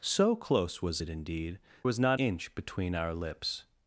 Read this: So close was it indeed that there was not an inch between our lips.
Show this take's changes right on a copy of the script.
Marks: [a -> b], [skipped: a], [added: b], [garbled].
So close was it indeed [skipped: that there] was not [skipped: an] inch between our lips.